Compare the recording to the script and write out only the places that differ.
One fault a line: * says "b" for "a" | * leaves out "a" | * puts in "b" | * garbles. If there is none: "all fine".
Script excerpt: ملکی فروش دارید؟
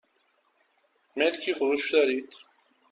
all fine